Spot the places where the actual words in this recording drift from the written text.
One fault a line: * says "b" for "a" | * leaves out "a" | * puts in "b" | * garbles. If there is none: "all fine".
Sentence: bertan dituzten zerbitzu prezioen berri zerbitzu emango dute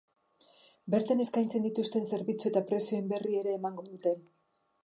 * puts in "eskaintzen"
* puts in "eta"
* says "ere" for "zerbitzu"